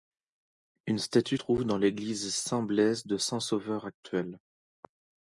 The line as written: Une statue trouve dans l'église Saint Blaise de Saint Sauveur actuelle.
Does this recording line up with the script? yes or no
yes